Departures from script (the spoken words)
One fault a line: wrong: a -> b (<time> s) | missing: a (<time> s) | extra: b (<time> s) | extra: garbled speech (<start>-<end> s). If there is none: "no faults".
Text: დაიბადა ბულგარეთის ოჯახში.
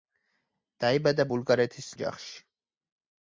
no faults